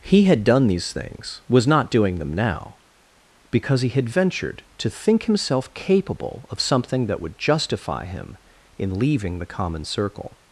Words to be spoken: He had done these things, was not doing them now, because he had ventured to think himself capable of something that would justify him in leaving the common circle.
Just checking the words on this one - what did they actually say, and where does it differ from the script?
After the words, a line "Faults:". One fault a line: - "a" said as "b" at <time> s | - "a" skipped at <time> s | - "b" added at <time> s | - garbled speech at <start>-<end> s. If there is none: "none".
He had done these things, was not doing them now, because he had ventured to think himself capable of something that would justify him in leaving the common circle.
Faults:
none